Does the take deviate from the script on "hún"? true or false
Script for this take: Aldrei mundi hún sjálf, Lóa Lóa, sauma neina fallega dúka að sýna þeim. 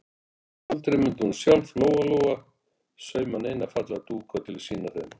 false